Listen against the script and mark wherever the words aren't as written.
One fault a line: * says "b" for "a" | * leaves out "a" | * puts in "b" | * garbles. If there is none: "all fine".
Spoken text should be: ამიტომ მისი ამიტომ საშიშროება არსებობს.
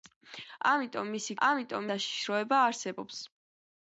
all fine